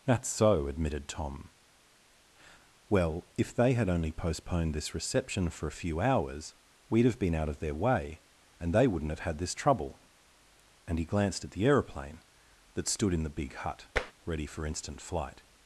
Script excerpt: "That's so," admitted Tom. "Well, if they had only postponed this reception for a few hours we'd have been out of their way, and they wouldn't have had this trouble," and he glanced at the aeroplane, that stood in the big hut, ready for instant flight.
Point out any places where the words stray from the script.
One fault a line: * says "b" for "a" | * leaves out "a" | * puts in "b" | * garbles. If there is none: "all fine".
all fine